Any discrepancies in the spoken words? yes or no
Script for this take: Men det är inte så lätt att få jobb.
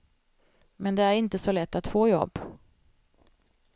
no